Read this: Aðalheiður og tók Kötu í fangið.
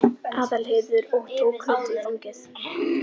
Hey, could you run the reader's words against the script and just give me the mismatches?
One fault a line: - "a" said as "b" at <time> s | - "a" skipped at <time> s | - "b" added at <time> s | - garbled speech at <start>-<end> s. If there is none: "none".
none